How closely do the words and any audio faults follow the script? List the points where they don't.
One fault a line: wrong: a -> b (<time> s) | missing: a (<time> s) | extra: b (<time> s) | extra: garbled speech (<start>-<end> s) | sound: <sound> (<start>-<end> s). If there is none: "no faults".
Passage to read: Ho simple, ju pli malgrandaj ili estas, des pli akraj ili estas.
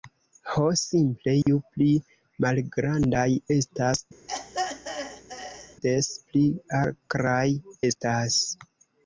sound: dropout (1.4-1.5 s)
missing: ili (3.3 s)
sound: throat clearing (4.3-5.8 s)
missing: ili (7.5 s)